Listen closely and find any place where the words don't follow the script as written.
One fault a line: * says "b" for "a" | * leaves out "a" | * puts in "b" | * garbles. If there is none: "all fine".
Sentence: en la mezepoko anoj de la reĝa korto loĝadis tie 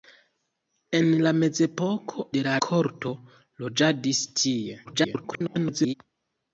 * leaves out "anoj"
* leaves out "reĝa"
* garbles